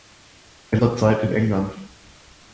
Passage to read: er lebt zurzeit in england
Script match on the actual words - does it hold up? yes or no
no